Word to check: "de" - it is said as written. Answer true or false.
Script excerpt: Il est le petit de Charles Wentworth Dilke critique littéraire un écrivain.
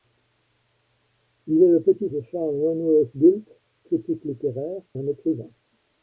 true